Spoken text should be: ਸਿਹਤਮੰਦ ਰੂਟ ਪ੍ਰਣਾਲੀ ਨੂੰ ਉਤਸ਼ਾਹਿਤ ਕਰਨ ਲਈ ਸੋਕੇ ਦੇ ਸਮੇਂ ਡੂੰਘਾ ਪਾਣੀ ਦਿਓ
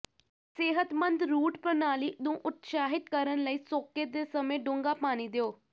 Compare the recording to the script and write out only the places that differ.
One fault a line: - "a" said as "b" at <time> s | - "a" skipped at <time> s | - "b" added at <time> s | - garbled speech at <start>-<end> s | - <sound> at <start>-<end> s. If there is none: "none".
none